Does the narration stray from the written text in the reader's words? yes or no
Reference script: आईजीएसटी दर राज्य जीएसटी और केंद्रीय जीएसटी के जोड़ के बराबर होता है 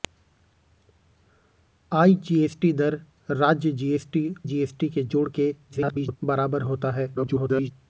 yes